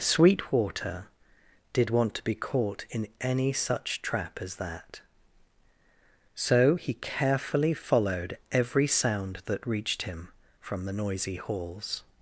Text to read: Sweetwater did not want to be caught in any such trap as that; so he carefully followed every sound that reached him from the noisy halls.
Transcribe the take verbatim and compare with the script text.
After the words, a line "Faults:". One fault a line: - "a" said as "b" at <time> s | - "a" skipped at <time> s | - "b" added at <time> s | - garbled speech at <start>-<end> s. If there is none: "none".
Sweetwater did want to be caught in any such trap as that; so he carefully followed every sound that reached him from the noisy halls.
Faults:
- "not" skipped at 1.9 s